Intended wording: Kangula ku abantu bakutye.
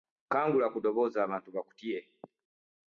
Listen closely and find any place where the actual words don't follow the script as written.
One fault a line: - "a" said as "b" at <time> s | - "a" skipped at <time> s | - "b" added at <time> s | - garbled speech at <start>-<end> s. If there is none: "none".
- "ddoboozi" added at 0.8 s